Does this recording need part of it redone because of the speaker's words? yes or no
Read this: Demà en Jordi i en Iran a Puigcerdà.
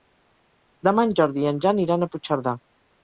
yes